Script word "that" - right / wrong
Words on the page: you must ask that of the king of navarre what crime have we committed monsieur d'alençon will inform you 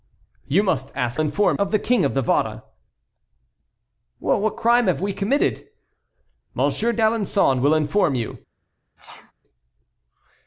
wrong